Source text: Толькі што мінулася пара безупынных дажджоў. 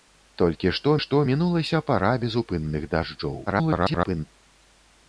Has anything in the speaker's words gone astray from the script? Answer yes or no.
yes